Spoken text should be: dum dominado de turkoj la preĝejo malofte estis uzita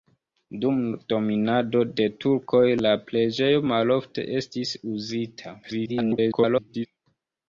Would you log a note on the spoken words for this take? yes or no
yes